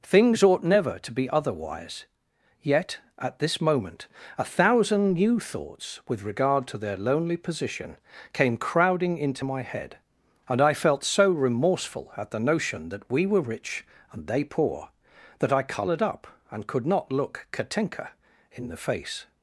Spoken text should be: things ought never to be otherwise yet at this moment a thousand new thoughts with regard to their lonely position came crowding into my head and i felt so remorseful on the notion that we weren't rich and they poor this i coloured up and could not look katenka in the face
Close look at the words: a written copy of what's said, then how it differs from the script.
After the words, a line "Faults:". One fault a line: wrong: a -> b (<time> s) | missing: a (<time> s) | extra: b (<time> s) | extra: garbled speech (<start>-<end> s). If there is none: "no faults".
things ought never to be otherwise yet at this moment a thousand new thoughts with regard to their lonely position came crowding into my head and i felt so remorseful at the notion that we were rich and they poor that i coloured up and could not look katenka in the face
Faults:
wrong: on -> at (12.2 s)
wrong: weren't -> were (13.3 s)
wrong: this -> that (15.4 s)